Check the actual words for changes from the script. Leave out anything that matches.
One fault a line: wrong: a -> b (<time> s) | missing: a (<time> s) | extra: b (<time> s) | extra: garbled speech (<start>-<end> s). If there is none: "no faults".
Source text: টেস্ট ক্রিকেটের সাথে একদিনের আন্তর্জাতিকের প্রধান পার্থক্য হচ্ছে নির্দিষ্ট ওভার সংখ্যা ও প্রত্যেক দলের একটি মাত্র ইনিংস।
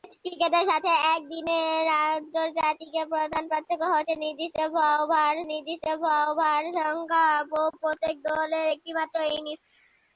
extra: নির্দিষ্ট ওভার (5.5 s)